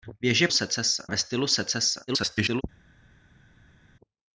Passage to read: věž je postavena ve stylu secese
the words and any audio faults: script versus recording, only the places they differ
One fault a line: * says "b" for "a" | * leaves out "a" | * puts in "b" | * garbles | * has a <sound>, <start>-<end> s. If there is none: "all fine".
* says "secese" for "postavena"
* garbles